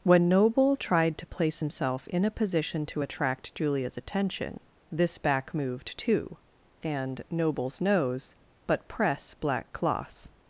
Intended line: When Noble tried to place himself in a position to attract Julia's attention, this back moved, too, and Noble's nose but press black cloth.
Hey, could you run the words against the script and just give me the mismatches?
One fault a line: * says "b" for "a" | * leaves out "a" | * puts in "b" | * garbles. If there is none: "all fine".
all fine